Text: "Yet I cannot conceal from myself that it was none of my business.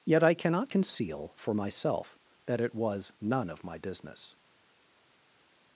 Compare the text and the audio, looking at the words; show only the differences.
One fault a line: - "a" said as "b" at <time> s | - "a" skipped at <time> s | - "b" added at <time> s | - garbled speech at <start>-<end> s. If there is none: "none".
- "from" said as "for" at 1.4 s